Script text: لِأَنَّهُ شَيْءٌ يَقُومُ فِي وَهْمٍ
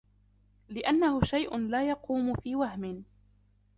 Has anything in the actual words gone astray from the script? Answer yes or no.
yes